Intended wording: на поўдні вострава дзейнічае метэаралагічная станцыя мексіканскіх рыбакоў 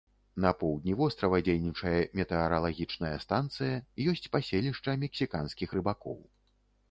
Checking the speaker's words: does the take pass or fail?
fail